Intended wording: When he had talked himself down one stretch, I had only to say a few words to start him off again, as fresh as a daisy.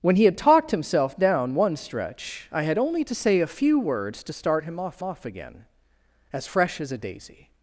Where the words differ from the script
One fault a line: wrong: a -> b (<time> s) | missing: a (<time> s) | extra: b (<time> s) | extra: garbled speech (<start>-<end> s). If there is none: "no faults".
extra: off (5.0 s)